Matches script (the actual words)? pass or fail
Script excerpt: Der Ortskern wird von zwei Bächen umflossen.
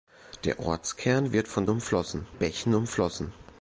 fail